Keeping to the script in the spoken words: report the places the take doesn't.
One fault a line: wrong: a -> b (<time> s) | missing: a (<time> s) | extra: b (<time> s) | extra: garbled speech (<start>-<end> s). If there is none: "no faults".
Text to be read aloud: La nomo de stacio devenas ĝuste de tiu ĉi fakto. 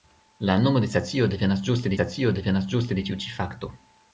extra: stacio devenas ĝuste (2.0 s)